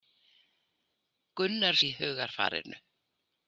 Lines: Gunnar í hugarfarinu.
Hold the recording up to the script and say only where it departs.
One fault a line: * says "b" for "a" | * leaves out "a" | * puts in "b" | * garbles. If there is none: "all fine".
all fine